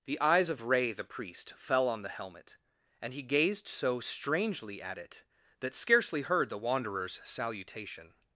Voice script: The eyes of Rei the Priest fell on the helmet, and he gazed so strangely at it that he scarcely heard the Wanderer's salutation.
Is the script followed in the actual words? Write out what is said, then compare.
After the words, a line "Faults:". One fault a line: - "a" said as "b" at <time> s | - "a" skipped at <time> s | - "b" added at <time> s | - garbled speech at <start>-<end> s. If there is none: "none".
The eyes of Rei the Priest fell on the helmet, and he gazed so strangely at it that scarcely heard the Wanderer's salutation.
Faults:
- "he" skipped at 5.8 s